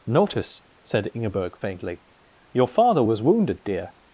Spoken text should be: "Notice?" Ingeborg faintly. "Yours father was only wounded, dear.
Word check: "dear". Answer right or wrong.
right